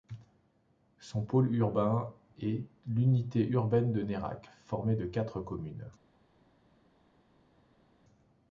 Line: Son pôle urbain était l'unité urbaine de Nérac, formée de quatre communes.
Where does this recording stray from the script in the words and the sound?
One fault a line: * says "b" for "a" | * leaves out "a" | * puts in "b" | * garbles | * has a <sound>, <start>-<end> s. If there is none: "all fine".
* says "est" for "était"